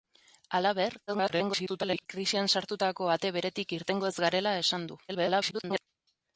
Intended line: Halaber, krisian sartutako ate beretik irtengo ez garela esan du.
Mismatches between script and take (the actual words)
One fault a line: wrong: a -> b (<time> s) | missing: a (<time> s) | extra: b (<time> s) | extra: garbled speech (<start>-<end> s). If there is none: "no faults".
extra: garbled speech (1.1-2.1 s)
extra: garbled speech (5.1-5.8 s)